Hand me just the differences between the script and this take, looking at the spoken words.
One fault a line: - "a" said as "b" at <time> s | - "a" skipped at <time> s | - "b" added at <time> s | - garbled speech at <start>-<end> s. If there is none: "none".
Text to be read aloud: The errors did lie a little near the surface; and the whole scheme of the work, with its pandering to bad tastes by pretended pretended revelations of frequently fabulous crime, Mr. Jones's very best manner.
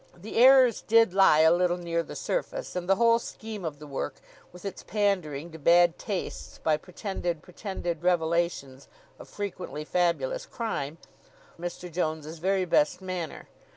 none